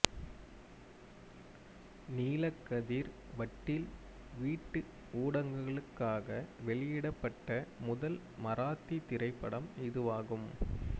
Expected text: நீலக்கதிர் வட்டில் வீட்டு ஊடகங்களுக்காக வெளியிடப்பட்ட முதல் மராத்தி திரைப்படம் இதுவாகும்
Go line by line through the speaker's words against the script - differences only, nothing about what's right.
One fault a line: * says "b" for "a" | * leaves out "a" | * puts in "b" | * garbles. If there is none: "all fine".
all fine